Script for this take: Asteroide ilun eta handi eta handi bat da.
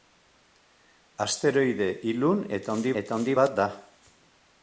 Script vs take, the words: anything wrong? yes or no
no